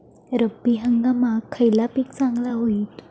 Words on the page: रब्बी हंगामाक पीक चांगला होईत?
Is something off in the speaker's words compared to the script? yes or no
yes